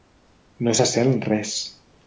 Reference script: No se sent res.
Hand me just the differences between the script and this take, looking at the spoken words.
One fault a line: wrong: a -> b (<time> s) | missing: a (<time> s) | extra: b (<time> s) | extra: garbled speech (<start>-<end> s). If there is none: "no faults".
no faults